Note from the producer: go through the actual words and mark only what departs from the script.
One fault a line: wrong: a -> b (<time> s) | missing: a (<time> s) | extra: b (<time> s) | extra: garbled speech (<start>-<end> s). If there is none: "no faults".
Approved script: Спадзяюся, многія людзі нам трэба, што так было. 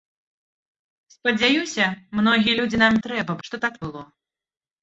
no faults